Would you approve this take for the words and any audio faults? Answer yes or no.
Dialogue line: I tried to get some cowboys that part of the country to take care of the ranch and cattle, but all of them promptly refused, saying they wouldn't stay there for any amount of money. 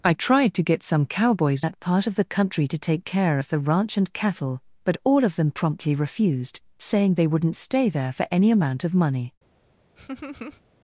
no